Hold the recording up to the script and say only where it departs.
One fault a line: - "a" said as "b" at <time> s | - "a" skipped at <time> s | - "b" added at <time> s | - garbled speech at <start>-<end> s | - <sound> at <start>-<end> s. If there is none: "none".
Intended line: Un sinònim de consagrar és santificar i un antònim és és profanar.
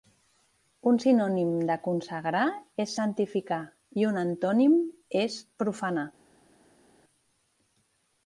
- "és" skipped at 5.4 s